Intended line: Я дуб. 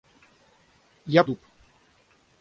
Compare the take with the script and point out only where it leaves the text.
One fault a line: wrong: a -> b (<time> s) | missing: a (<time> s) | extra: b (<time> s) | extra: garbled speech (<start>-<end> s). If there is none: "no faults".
no faults